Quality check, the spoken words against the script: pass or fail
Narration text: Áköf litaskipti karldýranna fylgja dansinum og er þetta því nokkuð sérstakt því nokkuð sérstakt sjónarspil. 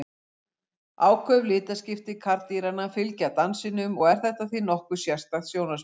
fail